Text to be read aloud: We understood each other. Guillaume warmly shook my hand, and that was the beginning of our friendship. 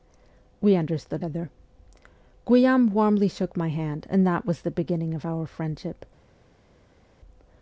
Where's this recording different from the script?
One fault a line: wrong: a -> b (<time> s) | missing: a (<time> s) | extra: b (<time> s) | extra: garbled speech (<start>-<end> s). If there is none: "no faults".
missing: each (1.2 s)